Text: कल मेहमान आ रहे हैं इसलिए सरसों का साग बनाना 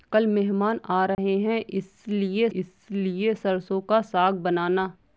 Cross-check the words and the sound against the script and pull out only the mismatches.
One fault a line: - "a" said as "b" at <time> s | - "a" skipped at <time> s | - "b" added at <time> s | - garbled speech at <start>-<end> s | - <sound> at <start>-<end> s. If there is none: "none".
- dropout at 1.1-1.2 s
- "इसलिए" added at 2.5 s